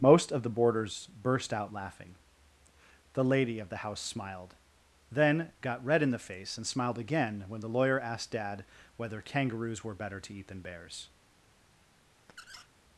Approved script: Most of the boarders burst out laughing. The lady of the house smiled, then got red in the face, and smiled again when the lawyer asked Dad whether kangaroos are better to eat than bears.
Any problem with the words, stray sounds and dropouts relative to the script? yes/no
yes